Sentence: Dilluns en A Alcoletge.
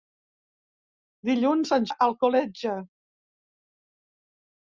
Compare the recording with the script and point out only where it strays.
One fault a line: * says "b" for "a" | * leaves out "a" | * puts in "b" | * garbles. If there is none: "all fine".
all fine